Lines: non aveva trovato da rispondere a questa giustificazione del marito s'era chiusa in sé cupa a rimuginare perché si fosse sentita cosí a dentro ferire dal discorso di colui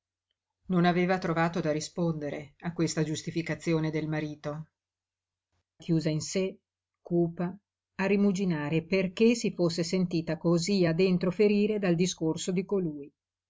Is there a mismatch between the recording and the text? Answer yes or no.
yes